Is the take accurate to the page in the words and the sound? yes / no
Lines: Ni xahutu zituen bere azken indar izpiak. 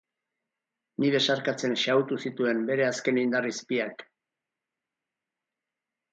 no